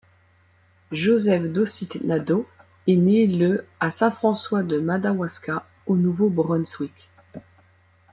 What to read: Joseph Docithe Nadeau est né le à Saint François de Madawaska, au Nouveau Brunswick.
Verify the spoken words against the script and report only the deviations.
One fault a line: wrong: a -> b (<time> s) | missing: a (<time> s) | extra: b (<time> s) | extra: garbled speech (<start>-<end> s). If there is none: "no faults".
no faults